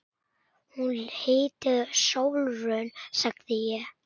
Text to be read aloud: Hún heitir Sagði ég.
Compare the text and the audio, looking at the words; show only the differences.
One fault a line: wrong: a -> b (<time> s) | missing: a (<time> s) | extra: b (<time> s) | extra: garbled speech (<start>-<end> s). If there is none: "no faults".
extra: Sólrún (2.0 s)